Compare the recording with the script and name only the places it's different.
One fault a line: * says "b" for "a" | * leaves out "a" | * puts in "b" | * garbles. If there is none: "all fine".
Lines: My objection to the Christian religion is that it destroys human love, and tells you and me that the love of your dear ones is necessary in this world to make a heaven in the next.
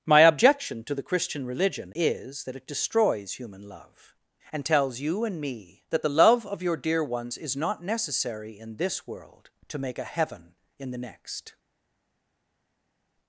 * puts in "not"